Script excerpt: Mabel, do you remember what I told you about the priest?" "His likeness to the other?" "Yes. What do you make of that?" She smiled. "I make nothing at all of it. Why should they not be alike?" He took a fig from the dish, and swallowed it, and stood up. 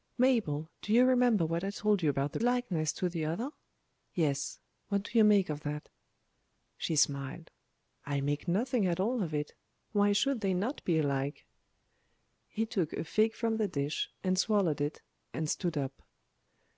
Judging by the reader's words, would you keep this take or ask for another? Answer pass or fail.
fail